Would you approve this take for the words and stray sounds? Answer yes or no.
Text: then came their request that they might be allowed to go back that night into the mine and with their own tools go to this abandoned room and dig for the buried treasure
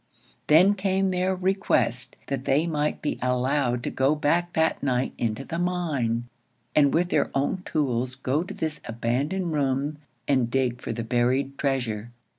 yes